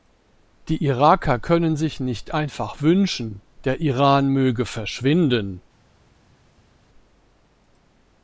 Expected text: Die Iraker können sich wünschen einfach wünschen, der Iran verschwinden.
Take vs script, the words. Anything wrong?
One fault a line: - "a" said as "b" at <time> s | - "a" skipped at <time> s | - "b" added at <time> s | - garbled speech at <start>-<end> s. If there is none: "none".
- "wünschen" said as "nicht" at 2.0 s
- "möge" added at 4.3 s